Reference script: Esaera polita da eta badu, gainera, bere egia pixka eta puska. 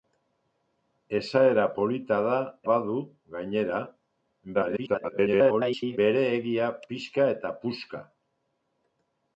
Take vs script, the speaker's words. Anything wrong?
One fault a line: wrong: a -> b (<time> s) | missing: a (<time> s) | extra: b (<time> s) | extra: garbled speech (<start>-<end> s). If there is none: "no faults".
missing: eta (2.4 s)
extra: garbled speech (4.5-6.0 s)